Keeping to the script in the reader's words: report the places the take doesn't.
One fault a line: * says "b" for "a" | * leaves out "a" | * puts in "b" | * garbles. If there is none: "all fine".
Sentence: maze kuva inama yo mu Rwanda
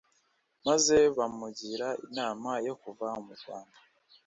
* says "bamugira" for "kuva"
* puts in "kuva"